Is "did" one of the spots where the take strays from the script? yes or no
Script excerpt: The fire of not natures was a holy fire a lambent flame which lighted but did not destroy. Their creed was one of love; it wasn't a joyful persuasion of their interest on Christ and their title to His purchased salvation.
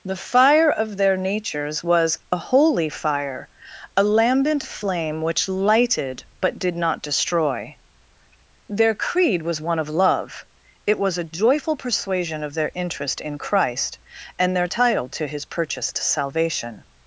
no